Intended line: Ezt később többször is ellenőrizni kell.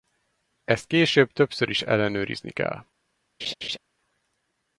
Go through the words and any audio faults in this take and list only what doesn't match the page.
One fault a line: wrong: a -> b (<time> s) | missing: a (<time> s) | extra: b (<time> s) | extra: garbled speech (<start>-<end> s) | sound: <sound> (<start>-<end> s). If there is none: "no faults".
sound: laugh (3.4-3.8 s)